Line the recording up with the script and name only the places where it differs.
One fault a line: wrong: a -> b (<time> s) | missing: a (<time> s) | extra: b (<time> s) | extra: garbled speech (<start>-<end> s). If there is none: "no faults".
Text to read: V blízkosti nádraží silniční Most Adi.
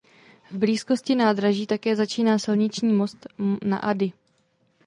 extra: také začíná (1.7 s)
extra: na (3.6 s)